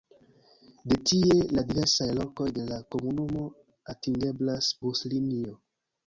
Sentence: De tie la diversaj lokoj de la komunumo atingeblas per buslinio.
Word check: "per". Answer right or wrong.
wrong